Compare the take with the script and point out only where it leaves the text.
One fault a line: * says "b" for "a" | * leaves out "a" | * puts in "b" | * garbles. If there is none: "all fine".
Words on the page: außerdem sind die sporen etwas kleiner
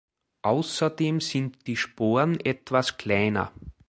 all fine